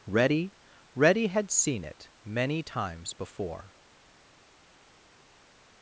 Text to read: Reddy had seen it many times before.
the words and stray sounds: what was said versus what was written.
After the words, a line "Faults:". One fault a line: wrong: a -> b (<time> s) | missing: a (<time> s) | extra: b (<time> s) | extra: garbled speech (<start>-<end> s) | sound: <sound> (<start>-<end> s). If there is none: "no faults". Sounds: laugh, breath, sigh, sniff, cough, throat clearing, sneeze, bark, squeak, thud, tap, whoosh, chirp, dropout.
Reddy reddy had seen it many times before.
Faults:
extra: reddy (0.9 s)